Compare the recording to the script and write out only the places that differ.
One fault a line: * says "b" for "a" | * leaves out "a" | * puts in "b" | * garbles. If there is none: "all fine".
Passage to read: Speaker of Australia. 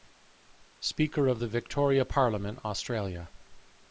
* puts in "the Victoria Parliament"